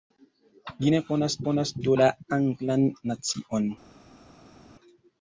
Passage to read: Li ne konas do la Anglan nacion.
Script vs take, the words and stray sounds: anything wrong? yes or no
yes